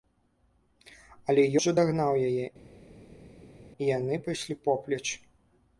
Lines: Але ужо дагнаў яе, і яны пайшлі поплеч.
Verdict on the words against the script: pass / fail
pass